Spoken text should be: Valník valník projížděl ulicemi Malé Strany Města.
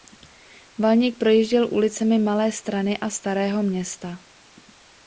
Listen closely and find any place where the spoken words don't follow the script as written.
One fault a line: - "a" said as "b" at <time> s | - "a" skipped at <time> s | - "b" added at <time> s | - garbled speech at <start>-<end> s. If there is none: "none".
- "valník" skipped at 1.2 s
- "a Starého" added at 3.0 s